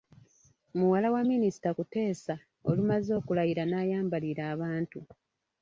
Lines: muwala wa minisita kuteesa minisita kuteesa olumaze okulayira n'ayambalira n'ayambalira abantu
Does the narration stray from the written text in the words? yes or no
yes